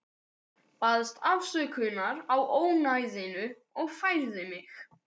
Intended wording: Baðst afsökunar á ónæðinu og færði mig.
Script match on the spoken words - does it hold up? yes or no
yes